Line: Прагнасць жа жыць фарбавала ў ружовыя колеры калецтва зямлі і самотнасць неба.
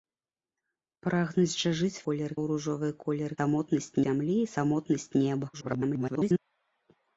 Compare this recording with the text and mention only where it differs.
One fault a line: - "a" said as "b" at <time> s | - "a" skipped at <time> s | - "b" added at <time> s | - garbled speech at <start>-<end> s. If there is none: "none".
- "фарбавала" said as "колеры" at 2.1 s
- "калецтва" said as "самотнасць" at 3.4 s
- garbled speech at 5.5-6.4 s